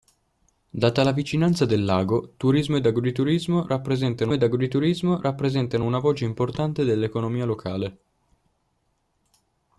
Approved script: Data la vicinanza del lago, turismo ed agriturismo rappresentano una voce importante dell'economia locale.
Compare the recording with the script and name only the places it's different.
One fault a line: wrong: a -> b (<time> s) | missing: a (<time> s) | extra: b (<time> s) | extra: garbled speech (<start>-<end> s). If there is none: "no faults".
extra: ed agriturismo rappresentano (4.3 s)